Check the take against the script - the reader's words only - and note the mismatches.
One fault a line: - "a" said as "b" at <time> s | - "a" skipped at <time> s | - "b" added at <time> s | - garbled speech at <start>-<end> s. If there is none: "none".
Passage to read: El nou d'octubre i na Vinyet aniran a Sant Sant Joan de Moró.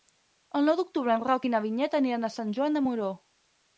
- "en Roc" added at 1.1 s
- "Sant" skipped at 2.6 s